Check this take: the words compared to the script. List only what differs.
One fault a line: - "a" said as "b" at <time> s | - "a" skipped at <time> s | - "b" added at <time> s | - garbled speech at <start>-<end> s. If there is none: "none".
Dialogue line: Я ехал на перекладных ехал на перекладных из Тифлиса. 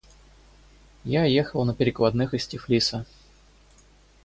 - "ехал на перекладных" skipped at 2.4 s